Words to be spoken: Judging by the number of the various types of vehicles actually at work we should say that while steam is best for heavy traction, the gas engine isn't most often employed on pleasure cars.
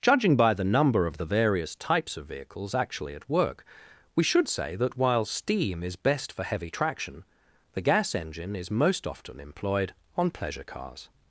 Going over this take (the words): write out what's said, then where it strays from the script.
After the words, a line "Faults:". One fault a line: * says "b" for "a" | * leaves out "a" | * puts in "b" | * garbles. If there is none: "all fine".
Judging by the number of the various types of vehicles actually at work we should say that while steam is best for heavy traction, the gas engine is most often employed on pleasure cars.
Faults:
* says "is" for "isn't"